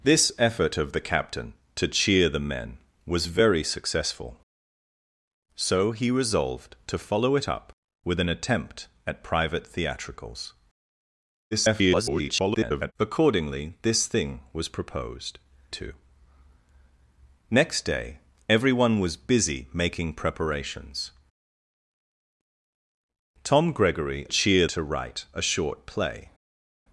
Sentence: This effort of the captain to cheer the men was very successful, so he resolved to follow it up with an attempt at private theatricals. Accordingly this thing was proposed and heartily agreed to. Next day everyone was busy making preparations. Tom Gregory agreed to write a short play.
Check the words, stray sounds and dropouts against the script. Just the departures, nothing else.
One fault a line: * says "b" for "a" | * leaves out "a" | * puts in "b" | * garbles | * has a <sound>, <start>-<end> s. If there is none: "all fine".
* garbles
* leaves out "and heartily agreed"
* says "cheer" for "agreed"